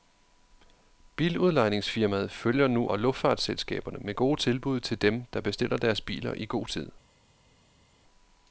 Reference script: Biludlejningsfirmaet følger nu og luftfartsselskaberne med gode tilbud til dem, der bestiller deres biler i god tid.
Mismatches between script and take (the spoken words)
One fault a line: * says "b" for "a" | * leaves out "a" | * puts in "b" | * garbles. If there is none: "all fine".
all fine